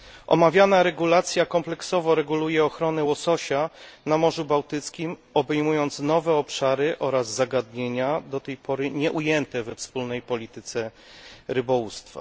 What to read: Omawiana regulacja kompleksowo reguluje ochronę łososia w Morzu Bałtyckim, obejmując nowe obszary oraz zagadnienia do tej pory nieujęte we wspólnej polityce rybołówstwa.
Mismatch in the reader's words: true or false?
true